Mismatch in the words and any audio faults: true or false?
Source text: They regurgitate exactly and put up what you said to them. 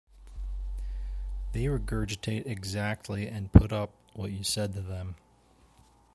false